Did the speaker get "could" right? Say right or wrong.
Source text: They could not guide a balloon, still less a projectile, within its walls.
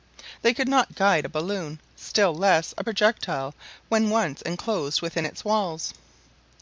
right